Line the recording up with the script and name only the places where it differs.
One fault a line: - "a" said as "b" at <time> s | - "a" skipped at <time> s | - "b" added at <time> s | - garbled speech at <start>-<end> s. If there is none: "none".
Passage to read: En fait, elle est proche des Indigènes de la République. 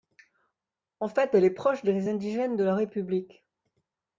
none